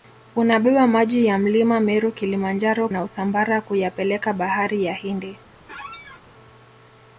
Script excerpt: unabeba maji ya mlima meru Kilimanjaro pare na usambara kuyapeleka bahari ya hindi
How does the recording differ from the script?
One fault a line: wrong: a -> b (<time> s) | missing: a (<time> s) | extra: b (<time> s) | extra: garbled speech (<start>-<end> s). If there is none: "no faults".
missing: pare (2.9 s)